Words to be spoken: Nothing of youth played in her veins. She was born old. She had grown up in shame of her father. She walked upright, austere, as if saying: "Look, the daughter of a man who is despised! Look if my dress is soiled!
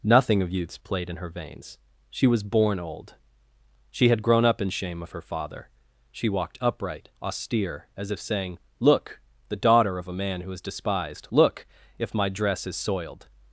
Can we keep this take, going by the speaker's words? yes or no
no